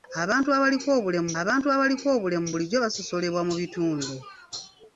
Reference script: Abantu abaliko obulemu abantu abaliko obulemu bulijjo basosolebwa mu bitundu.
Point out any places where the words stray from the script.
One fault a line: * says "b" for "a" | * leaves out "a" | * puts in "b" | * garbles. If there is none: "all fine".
all fine